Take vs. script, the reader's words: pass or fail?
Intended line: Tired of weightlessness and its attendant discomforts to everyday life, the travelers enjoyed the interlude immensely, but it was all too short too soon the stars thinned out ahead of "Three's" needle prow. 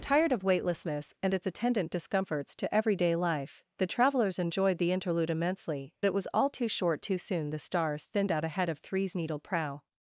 fail